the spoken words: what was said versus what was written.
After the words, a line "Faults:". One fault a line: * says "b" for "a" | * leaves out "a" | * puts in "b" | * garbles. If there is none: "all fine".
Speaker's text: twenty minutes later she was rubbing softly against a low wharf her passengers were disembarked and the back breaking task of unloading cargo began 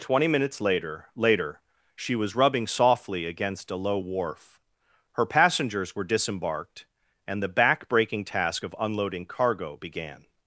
twenty minutes later later she was rubbing softly against a low wharf her passengers were disembarked and the back breaking task of unloading cargo began
Faults:
* puts in "later"